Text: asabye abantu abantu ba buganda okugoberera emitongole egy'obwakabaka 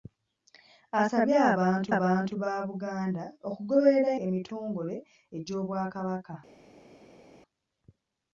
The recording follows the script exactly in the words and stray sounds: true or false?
true